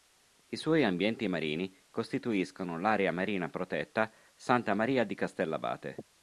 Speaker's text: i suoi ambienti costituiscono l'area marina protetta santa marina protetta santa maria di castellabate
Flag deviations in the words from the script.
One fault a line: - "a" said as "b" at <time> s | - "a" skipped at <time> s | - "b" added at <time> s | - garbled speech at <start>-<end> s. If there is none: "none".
- "marini" added at 1.3 s
- "marina protetta santa" skipped at 4.7 s